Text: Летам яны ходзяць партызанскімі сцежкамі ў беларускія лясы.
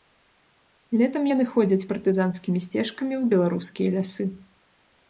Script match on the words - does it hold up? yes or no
yes